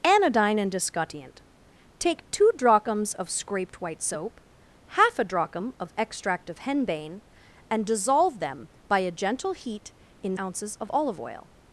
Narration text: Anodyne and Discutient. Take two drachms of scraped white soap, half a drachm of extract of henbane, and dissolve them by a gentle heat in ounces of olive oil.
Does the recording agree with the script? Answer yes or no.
yes